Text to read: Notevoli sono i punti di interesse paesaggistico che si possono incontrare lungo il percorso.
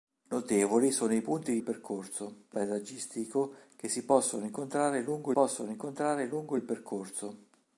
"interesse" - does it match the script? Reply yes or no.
no